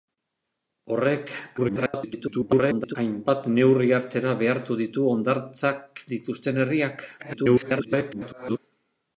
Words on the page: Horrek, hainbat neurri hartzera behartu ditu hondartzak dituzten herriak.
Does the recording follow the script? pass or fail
fail